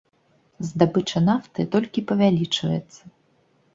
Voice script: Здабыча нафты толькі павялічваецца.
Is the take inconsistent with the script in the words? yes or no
no